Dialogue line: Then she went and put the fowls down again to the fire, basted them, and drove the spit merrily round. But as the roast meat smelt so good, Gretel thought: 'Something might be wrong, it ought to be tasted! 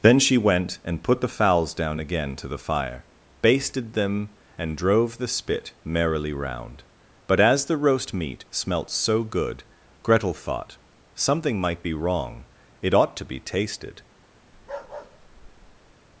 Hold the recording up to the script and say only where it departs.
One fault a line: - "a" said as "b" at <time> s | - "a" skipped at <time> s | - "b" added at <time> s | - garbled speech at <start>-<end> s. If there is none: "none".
none